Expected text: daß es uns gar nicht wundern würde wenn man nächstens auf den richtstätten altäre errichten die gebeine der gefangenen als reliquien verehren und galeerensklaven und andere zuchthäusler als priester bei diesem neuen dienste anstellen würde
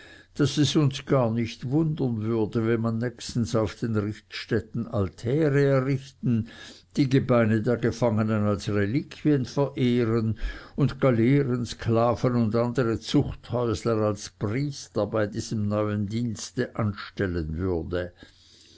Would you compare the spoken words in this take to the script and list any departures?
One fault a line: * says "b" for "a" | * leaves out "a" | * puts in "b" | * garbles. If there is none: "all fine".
all fine